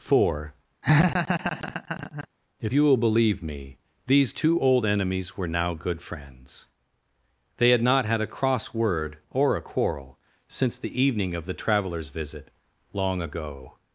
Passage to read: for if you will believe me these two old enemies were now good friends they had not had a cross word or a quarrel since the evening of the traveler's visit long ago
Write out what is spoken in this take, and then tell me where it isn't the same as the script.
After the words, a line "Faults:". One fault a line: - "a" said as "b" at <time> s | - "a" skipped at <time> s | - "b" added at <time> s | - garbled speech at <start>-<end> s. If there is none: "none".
for if you will believe me these two old enemies were now good friends they had not had a cross word or a quarrel since the evening of the traveler's visit long ago
Faults:
none